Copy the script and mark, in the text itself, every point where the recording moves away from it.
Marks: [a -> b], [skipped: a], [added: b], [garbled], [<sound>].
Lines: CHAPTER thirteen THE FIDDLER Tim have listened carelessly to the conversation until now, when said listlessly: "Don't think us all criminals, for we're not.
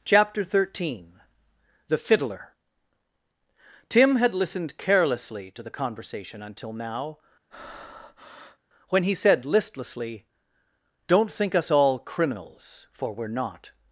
CHAPTER thirteen THE FIDDLER Tim [have -> had] listened carelessly to the conversation until now, [breath] when [added: he] said listlessly: "Don't think us all criminals, for we're not.